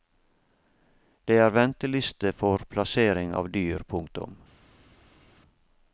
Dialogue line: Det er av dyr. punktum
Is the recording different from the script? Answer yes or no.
yes